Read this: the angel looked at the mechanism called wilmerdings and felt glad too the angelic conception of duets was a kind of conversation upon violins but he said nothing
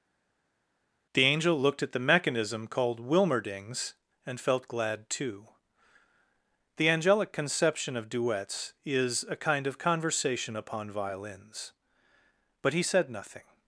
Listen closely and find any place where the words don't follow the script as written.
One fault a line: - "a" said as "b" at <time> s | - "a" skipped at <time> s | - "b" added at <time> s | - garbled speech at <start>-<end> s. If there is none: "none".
- "was" said as "is" at 8.8 s